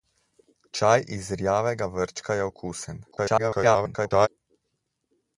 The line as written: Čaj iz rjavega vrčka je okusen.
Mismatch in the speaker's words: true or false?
true